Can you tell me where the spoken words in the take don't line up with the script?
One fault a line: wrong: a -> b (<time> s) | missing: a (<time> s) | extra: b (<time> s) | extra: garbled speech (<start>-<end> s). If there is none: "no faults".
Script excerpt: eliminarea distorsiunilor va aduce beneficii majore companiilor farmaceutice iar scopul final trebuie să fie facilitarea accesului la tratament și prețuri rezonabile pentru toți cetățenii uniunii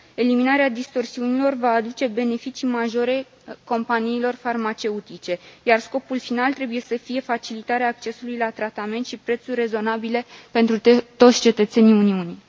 no faults